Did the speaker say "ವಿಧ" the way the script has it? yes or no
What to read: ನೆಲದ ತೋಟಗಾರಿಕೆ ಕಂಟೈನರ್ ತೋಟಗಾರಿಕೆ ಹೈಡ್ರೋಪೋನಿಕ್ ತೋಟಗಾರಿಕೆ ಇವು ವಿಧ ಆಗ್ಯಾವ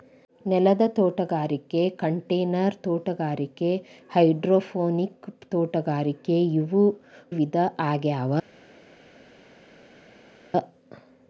yes